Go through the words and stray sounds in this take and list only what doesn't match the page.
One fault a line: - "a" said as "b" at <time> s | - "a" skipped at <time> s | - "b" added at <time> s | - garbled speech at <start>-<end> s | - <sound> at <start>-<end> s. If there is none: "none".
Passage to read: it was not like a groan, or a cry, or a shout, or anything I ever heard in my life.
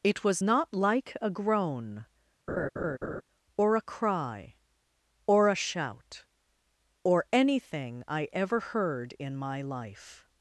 - laugh at 2.5-3.2 s